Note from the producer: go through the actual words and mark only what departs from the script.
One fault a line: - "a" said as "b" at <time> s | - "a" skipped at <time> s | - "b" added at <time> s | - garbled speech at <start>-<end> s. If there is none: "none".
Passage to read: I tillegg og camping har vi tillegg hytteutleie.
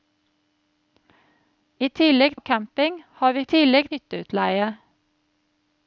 none